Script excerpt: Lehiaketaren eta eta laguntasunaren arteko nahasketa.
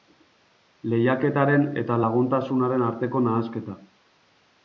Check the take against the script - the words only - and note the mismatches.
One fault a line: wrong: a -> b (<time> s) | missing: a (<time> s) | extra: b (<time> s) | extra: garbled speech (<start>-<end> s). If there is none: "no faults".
missing: eta (2.0 s)